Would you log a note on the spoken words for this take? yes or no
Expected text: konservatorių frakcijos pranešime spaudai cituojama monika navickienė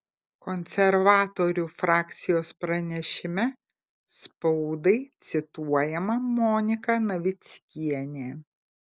no